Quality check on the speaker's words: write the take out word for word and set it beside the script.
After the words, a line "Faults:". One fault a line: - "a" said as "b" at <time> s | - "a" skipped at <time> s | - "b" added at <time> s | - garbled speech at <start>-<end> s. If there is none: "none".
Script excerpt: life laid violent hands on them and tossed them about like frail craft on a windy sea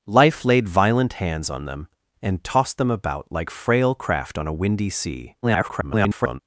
life laid violent hands on them and tossed them about like frail craft on a windy sea [garbled]
Faults:
- garbled speech at 5.4-6.4 s